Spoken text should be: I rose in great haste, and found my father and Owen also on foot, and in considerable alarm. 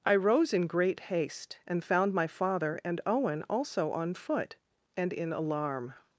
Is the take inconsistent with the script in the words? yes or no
yes